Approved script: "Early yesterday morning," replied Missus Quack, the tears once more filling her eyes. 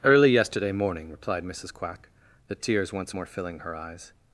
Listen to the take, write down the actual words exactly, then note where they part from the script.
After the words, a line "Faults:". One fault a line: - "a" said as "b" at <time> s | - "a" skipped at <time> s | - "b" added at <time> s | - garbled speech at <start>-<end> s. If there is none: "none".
"Early yesterday morning," replied Missus Quack, the tears once more filling her eyes.
Faults:
none